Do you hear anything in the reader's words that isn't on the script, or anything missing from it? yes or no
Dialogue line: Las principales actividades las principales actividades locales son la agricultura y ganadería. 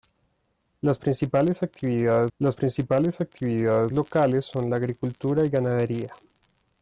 no